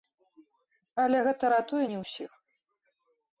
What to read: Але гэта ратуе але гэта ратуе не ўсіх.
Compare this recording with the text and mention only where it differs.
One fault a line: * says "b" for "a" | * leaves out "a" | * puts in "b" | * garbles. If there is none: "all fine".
* leaves out "але гэта ратуе"